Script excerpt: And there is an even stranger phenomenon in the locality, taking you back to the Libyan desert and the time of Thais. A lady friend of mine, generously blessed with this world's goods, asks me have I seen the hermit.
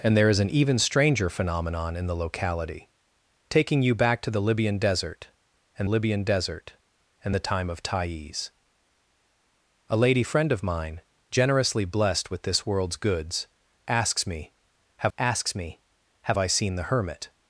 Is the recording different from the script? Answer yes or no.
yes